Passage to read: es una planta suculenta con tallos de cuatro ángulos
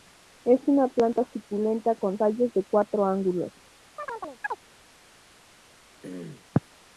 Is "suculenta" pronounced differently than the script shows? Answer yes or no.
no